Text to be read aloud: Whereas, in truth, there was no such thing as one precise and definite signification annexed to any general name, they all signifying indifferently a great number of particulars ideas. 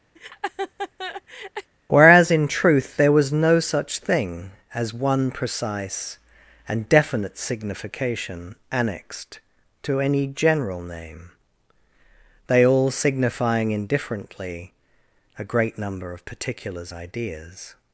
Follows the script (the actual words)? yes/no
yes